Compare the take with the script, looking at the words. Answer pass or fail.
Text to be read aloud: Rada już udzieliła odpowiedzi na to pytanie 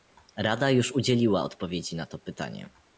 pass